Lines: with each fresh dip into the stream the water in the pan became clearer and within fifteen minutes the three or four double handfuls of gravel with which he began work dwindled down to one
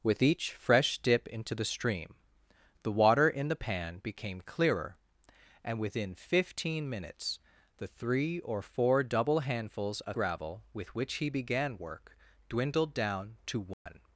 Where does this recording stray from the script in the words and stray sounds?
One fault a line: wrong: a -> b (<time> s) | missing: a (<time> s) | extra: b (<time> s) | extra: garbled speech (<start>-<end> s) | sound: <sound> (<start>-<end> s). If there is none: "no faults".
sound: dropout (13.7-13.9 s)